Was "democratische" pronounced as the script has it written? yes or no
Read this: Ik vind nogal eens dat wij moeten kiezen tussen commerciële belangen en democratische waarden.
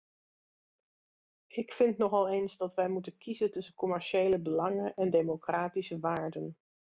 yes